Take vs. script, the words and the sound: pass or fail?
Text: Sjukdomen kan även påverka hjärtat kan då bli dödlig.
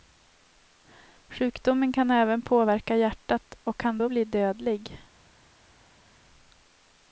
fail